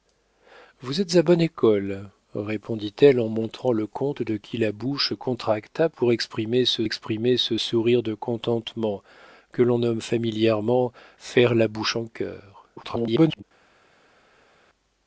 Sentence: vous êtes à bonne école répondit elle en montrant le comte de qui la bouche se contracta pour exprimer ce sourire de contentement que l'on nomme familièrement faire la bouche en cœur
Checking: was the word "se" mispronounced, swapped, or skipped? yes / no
yes